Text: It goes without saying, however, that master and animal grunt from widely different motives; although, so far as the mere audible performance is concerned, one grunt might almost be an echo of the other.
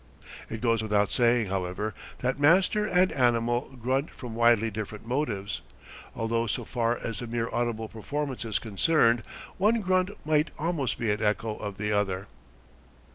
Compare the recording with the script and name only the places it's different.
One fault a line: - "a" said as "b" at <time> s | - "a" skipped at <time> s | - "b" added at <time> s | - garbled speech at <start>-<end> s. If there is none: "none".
none